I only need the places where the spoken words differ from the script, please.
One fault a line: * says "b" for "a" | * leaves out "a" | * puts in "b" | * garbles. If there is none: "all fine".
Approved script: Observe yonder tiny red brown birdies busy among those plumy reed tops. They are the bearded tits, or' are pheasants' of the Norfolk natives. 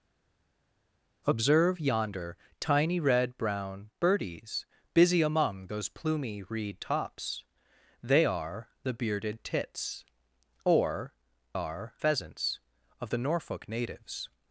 all fine